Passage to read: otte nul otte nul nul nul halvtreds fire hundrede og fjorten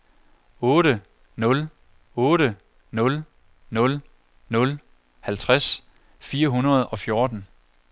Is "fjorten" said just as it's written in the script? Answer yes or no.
yes